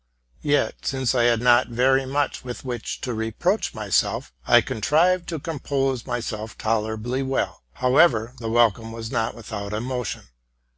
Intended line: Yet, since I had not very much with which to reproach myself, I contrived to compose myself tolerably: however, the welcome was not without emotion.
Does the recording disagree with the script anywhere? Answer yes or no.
yes